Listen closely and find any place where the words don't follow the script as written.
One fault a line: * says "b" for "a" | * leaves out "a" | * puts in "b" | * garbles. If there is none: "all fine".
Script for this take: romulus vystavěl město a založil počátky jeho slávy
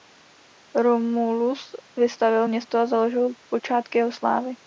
all fine